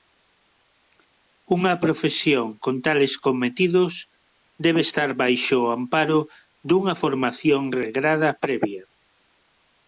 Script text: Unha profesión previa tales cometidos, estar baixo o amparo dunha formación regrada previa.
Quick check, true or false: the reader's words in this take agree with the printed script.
false